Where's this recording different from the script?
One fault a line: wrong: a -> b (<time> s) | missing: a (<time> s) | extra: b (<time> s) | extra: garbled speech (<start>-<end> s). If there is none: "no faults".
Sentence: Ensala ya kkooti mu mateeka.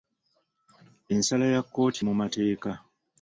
no faults